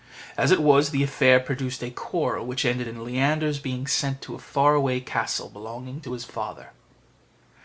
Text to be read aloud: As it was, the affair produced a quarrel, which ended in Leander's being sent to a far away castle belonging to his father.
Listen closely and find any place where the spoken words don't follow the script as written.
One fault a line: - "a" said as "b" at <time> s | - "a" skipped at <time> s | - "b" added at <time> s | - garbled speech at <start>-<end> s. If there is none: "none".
none